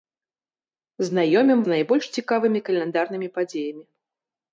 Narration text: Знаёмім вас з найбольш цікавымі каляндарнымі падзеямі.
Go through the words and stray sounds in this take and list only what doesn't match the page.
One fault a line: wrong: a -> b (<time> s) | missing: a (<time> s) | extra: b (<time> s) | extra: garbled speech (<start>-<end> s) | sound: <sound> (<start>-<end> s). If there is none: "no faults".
missing: вас (1.6 s)